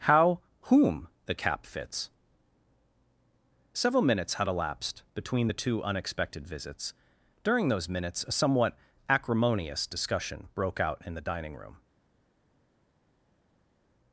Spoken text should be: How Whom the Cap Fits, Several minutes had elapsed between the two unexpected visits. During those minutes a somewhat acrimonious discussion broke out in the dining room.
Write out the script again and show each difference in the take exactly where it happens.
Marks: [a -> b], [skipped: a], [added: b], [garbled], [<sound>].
How Whom the Cap Fits, Several minutes had elapsed between the two unexpected visits. During those minutes a somewhat acrimonious discussion broke out in the dining room.